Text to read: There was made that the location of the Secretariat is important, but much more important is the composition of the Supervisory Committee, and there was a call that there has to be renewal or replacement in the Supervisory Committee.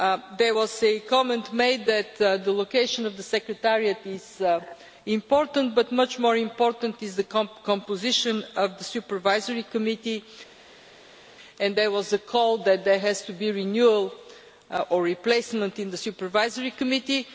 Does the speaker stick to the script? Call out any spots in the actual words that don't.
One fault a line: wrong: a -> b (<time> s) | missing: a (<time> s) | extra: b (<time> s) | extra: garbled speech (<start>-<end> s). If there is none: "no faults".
extra: a comment (0.8 s)